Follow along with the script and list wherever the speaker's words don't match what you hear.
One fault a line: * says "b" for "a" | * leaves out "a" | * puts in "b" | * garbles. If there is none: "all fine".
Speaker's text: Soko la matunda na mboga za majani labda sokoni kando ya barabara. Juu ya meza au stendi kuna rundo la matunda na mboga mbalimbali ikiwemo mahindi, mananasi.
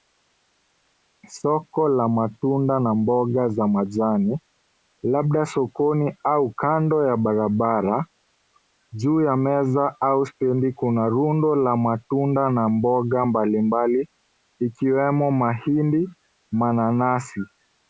* puts in "au"